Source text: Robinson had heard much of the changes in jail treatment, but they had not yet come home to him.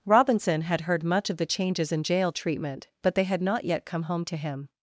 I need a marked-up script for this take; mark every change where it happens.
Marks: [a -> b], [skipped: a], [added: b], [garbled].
Robinson had heard much of the changes in jail treatment, but they had not yet come home to him.